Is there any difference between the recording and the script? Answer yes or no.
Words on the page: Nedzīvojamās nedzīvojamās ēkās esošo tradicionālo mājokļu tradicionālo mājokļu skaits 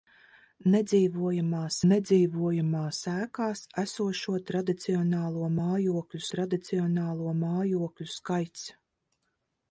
no